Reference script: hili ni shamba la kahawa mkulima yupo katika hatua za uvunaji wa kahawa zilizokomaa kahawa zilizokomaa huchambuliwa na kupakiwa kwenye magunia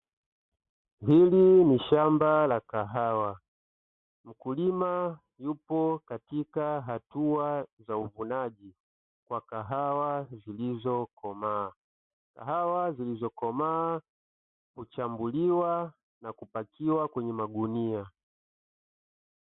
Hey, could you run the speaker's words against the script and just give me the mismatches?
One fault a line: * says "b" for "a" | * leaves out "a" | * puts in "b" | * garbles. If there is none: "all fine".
all fine